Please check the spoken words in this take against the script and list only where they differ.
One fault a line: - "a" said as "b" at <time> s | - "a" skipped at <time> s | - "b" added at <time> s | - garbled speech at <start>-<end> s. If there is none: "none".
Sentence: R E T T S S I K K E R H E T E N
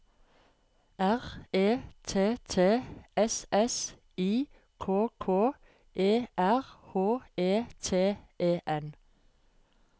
none